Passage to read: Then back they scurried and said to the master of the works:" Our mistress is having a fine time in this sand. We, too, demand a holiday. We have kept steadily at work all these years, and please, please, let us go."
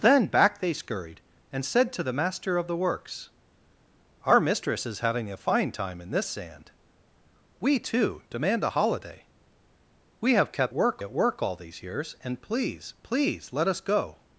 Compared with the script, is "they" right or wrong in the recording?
right